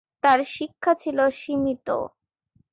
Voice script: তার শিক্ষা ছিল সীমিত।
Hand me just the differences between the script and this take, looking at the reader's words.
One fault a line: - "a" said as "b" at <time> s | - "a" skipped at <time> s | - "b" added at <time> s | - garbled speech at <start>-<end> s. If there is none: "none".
none